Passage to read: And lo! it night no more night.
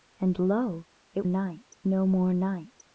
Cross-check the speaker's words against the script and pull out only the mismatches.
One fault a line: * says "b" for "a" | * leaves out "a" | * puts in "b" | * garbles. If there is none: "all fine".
all fine